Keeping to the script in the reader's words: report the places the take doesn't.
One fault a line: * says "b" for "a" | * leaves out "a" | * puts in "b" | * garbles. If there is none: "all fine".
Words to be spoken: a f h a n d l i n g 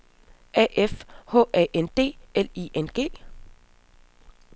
all fine